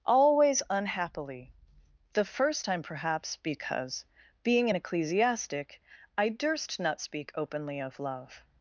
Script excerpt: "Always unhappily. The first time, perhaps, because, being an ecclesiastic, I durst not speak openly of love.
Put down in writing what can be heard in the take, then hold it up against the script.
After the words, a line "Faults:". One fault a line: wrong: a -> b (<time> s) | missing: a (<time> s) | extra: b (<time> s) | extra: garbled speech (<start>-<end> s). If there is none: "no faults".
"Always unhappily. The first time, perhaps, because, being an ecclesiastic, I durst not speak openly of love.
Faults:
no faults